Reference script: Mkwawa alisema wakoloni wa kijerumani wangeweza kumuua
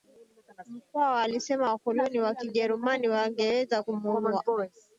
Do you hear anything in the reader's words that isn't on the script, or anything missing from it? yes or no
no